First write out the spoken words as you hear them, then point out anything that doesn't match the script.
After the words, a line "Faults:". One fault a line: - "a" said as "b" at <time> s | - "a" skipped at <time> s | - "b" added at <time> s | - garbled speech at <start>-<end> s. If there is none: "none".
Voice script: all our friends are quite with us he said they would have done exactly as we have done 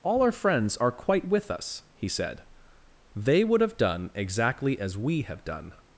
all our friends are quite with us he said they would have done exactly as we have done
Faults:
none